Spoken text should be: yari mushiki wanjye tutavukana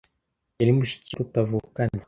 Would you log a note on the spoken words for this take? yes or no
yes